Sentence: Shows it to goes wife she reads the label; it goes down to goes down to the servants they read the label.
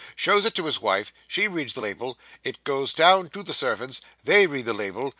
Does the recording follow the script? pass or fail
fail